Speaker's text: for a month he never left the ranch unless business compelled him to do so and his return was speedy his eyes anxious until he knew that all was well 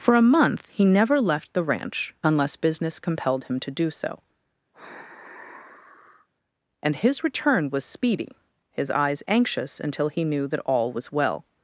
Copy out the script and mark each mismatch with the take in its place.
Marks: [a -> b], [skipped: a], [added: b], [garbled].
for a month he never left the ranch unless business compelled him to do so and his return was speedy his eyes anxious until he knew that all was well